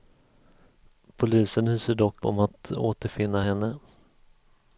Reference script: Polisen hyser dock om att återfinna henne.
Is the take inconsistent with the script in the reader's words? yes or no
no